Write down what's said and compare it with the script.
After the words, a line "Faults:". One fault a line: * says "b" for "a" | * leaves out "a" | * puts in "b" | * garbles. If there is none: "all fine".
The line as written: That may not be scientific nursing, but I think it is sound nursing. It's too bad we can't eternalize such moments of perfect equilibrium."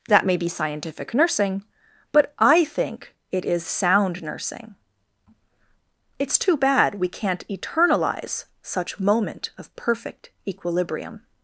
That may be scientific nursing, but I think it is sound nursing. It's too bad we can't eternalize such moment of perfect equilibrium."
Faults:
* leaves out "not"
* says "moment" for "moments"